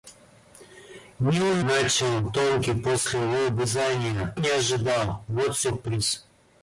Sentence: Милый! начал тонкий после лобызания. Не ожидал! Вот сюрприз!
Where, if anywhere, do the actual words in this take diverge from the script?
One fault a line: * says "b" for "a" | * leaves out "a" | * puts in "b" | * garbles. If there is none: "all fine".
all fine